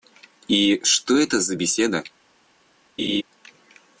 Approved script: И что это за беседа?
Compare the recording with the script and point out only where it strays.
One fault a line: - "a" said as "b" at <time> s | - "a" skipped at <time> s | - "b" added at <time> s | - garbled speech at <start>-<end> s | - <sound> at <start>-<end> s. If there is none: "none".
- laugh at 3.0-3.2 s